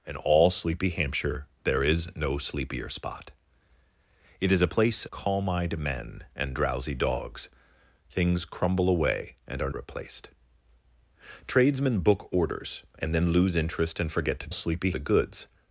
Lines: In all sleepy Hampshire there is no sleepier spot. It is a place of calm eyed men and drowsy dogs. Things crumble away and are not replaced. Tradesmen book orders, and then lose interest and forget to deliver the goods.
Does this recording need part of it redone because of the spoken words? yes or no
yes